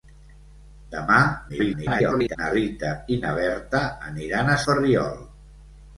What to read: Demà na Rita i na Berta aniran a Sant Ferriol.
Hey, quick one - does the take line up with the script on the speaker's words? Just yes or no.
no